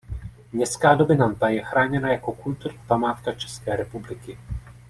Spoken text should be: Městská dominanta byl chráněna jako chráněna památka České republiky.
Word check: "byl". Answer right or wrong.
wrong